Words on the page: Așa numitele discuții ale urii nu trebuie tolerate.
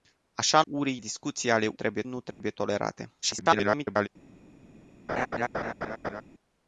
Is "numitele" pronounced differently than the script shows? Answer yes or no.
yes